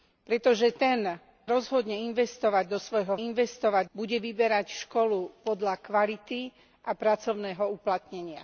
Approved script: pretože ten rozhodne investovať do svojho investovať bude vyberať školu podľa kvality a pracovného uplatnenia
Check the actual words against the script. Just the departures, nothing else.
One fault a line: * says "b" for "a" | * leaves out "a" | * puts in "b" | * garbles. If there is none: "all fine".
all fine